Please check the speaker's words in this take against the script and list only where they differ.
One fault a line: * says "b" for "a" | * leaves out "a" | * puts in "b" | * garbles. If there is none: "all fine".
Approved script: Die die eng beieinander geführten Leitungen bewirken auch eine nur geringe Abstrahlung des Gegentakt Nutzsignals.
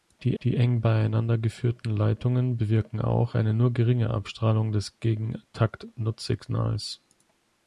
all fine